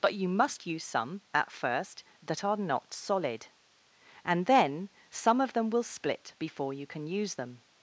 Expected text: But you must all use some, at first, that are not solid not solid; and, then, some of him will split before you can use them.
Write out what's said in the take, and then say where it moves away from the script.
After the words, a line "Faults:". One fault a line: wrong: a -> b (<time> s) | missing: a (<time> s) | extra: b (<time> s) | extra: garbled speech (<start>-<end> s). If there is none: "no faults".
But you must use some, at first, that are not solid; and, then, some of them will split before you can use them.
Faults:
missing: all (0.7 s)
missing: not solid (3.5 s)
wrong: him -> them (5.5 s)